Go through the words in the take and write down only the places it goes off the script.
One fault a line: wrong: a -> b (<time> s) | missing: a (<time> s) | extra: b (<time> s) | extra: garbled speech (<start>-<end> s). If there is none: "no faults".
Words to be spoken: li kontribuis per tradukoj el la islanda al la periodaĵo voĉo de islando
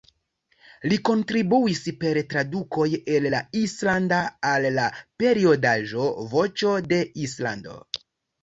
no faults